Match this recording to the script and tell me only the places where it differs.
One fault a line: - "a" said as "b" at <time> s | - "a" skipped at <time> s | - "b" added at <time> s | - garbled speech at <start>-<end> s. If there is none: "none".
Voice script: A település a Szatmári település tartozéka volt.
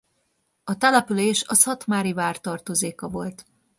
- "település" said as "vár" at 2.1 s